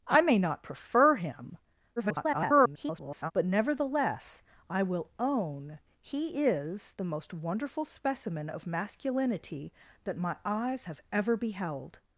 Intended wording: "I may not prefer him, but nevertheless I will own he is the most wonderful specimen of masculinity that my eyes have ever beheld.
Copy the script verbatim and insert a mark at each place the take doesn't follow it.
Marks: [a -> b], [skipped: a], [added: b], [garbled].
"I may not prefer him, [garbled] but nevertheless I will own he is the most wonderful specimen of masculinity that my eyes have ever beheld.